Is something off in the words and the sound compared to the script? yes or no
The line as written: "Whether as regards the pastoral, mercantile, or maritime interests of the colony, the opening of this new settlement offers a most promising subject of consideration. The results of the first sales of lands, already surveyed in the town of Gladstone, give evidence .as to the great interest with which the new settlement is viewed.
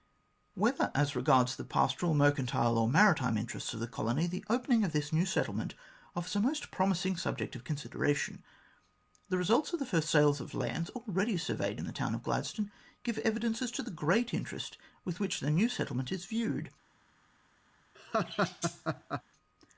yes